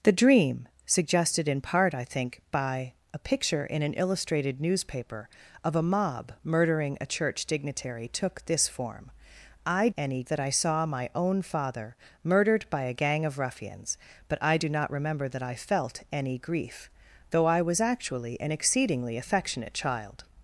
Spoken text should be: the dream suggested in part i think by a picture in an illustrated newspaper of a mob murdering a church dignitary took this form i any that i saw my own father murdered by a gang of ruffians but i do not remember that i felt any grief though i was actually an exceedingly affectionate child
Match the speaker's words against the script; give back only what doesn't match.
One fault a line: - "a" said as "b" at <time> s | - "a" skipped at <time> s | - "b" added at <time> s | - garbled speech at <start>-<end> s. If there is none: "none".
none